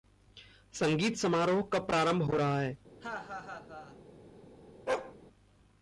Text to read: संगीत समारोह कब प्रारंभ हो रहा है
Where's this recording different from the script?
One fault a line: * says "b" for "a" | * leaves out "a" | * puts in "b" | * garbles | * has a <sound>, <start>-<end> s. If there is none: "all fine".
* has a laugh, 3.0-4.0 s
* has a bark, 4.9-5.2 s